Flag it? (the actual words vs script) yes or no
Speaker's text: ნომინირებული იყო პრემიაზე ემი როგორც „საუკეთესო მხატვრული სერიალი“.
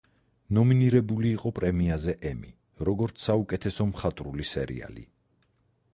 no